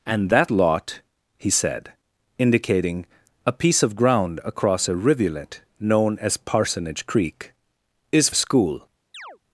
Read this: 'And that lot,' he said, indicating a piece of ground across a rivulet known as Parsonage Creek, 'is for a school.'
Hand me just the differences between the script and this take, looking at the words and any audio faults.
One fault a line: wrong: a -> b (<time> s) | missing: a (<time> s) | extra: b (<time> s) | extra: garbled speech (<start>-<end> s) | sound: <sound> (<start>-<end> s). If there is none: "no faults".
missing: for (8.3 s)
sound: chirp (9.1-9.4 s)